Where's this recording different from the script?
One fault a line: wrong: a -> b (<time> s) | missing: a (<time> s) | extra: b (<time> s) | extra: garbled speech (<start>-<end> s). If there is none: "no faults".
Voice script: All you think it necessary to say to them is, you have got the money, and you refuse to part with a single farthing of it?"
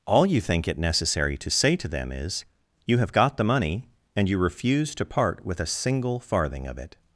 no faults